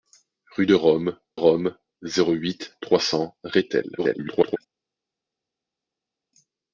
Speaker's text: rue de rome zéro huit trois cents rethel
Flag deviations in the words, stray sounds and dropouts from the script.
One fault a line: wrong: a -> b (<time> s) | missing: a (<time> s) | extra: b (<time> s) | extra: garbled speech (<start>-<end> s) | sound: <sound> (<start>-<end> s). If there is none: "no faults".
extra: rome (1.3 s)
extra: garbled speech (4.0-4.6 s)